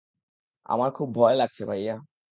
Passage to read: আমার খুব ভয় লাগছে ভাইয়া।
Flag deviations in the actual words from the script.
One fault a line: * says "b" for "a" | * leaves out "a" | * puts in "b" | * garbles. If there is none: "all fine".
all fine